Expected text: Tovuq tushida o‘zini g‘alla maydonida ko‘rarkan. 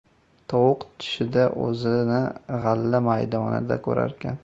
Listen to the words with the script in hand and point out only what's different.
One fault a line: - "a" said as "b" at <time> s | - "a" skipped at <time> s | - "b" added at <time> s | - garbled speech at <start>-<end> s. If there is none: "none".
none